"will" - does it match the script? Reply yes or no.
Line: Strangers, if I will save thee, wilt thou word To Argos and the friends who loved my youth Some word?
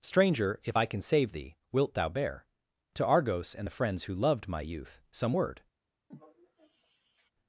no